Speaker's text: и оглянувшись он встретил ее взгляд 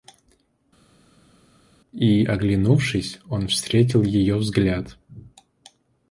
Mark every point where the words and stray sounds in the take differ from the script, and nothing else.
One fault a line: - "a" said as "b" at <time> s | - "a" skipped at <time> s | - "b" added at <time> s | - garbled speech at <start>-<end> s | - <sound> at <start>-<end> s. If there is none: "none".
none